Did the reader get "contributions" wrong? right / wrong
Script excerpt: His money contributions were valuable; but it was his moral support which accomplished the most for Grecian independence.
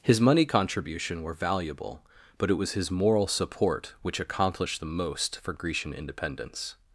wrong